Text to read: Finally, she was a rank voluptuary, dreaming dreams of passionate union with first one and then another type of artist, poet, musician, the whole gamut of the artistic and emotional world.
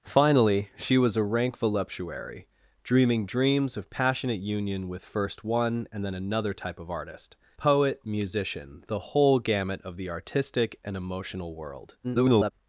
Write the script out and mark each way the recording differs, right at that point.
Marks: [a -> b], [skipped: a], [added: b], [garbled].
Finally, she was a rank voluptuary, dreaming dreams of passionate union with first one and then another type of artist, poet, musician, the whole gamut of the artistic and emotional world. [garbled]